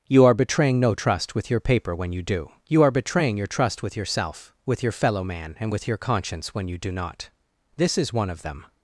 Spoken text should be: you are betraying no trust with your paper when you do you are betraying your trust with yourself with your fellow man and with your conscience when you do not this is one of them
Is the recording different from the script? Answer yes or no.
no